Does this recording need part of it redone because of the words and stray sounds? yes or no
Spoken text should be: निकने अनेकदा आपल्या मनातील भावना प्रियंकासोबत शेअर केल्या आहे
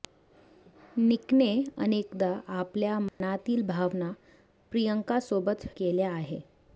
yes